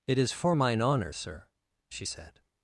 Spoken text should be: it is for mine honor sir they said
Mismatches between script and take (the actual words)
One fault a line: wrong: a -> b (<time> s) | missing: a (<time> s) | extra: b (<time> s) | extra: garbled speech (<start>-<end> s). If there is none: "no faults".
wrong: they -> she (1.9 s)